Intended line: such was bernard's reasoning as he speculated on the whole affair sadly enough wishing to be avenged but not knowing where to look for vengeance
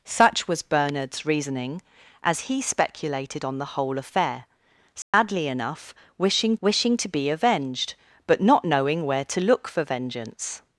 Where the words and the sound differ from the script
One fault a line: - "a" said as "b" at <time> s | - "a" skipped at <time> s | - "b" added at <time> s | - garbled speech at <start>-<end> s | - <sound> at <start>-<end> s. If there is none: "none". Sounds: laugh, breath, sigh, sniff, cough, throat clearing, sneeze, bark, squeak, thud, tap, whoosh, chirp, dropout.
- dropout at 5.0-5.1 s
- "wishing" added at 6.6 s